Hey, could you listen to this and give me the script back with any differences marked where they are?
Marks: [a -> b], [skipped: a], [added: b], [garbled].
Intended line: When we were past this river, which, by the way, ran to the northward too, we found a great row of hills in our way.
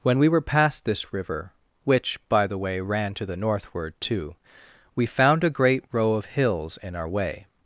When we were past this river, which, by the way, ran to the northward too, we found a great row of hills in our way.